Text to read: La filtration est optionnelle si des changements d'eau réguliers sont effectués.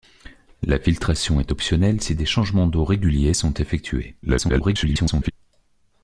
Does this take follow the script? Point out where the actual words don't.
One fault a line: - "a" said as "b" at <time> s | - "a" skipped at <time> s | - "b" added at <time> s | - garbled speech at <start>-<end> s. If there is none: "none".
- garbled speech at 4.2-5.3 s